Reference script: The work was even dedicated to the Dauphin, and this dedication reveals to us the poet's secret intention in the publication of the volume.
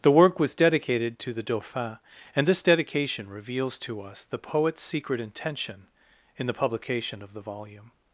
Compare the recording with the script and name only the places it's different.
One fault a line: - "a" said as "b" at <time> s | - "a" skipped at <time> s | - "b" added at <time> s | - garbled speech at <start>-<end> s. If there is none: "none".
- "even" skipped at 0.6 s